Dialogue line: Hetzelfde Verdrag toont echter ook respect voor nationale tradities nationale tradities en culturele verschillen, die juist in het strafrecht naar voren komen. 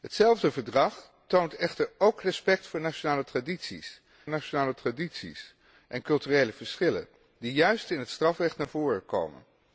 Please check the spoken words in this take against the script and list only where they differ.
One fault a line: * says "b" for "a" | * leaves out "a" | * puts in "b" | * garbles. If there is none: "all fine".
all fine